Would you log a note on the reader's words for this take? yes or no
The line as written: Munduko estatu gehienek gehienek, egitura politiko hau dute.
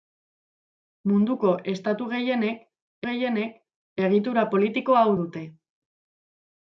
no